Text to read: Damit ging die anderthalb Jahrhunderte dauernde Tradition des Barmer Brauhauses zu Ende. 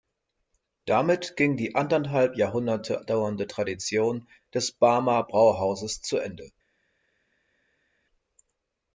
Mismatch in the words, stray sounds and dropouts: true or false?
false